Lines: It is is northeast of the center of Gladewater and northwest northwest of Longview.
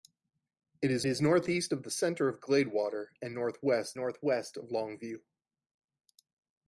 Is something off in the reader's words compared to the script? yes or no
no